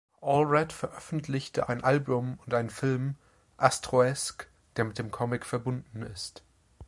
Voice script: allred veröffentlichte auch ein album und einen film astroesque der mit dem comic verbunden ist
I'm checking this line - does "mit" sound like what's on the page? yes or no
yes